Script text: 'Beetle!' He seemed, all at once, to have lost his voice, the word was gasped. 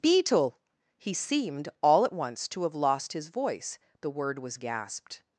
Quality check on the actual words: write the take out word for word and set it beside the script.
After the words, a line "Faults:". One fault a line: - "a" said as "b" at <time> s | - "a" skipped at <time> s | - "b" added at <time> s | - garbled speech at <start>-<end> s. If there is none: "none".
'Beetle!' He seemed, all at once, to have lost his voice, the word was gasped.
Faults:
none